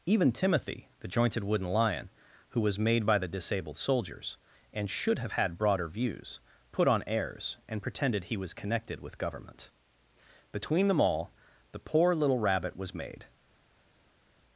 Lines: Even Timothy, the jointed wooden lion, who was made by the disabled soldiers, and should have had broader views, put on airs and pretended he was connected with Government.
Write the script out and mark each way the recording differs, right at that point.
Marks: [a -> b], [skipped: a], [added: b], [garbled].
Even Timothy, the jointed wooden lion, who was made by the disabled soldiers, and should have had broader views, put on airs and pretended he was connected with Government. [added: Between them all the poor little Rabbit was made]